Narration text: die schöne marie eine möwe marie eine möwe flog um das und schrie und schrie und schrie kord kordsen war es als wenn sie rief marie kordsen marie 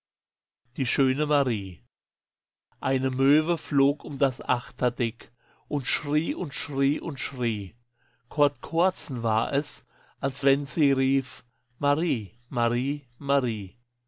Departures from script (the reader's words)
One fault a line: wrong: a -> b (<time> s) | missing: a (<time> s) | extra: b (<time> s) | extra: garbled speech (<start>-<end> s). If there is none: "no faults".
missing: marie eine möwe (3.6 s)
extra: achterdeck (4.4 s)
wrong: kordsen -> marie (12.5 s)